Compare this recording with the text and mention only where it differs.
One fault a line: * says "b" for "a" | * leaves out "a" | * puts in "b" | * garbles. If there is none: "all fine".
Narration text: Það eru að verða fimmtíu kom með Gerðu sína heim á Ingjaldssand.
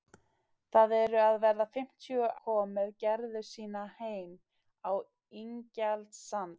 all fine